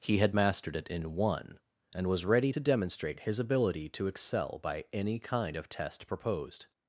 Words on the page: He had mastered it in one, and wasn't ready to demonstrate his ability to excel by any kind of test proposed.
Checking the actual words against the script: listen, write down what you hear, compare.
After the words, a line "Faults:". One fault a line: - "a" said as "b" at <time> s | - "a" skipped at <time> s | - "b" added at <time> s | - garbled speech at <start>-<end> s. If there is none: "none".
He had mastered it in one, and was ready to demonstrate his ability to excel by any kind of test proposed.
Faults:
- "wasn't" said as "was" at 2.1 s